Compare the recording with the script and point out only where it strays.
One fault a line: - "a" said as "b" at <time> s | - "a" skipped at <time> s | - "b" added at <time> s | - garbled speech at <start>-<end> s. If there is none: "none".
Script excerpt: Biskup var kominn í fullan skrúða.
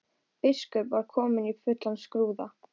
none